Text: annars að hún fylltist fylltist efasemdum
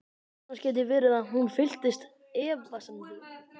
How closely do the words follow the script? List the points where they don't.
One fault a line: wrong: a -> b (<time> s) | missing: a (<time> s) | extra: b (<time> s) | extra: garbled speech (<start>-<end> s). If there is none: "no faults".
extra: gæti verið (0.6 s)
missing: fylltist (2.1 s)